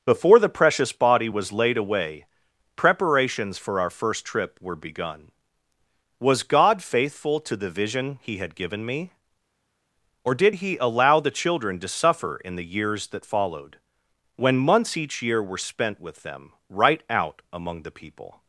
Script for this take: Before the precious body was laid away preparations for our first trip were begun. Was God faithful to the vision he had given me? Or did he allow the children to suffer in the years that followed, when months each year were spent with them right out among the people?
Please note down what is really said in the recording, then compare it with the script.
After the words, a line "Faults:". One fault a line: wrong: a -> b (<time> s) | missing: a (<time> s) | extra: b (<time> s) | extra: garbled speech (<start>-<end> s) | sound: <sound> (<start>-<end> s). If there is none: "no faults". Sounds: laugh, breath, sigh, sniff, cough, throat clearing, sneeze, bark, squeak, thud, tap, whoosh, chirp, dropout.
Before the precious body was laid away preparations for our first trip were begun. Was God faithful to the vision he had given me? Or did he allow the children to suffer in the years that followed, when months each year were spent with them right out among the people?
Faults:
no faults